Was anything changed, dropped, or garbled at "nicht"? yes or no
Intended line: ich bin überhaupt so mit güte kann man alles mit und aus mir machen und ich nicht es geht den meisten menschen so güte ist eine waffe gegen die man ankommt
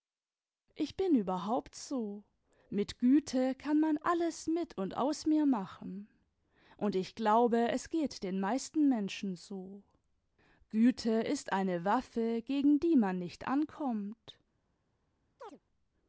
yes